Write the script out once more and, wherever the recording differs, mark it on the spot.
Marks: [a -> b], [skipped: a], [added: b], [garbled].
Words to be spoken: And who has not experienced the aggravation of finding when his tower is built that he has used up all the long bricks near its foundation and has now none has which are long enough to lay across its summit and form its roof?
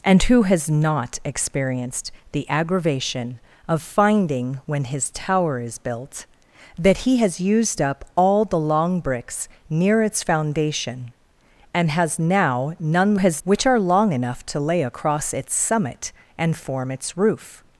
And who has not experienced the aggravation of finding when his tower is built that he has used up all the long bricks near its foundation and has now none has which are long enough to lay across its summit and form its roof?